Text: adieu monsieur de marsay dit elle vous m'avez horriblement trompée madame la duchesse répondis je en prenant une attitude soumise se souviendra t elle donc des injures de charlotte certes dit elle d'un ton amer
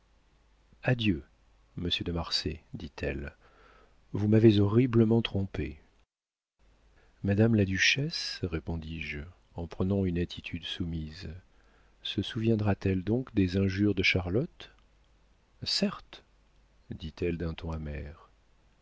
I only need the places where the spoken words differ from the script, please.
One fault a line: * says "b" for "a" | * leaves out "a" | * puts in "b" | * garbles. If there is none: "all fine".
all fine